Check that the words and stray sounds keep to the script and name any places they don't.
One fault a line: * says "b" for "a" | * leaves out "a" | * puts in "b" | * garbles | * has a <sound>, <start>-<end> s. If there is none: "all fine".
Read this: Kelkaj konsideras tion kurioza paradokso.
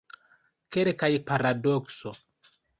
* leaves out "konsideras tion kurioza"